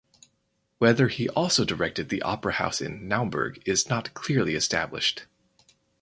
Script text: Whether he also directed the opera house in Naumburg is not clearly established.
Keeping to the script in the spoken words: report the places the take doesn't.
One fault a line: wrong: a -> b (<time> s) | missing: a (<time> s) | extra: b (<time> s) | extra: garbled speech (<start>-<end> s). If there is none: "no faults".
no faults